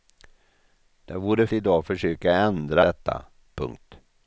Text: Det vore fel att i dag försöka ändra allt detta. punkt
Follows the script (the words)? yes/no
no